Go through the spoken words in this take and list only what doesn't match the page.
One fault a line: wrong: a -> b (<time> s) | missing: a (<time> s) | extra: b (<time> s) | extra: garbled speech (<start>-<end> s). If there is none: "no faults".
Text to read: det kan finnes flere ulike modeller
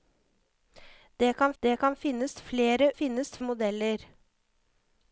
extra: det kan (1.6 s)
wrong: ulike -> finnes (2.9 s)